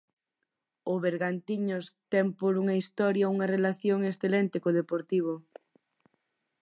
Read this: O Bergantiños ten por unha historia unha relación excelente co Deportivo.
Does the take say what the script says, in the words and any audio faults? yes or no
yes